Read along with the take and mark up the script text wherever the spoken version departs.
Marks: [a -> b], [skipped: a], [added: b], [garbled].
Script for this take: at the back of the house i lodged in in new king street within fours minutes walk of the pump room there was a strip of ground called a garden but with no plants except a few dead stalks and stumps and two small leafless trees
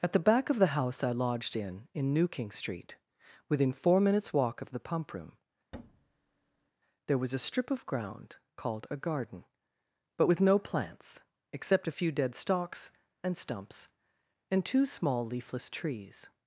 at the back of the house i lodged in in new king street within [fours -> four] minutes walk of the pump room there was a strip of ground called a garden but with no plants except a few dead stalks and stumps and two small leafless trees